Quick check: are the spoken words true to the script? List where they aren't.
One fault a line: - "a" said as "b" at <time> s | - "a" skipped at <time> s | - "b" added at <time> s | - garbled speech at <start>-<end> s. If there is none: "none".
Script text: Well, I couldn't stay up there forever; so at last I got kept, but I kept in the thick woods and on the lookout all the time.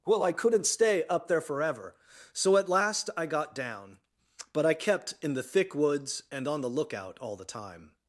- "kept" said as "down" at 3.5 s